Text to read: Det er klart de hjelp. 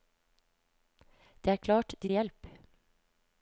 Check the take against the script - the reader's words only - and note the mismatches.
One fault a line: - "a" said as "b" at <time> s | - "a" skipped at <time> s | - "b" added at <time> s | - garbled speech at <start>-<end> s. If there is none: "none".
none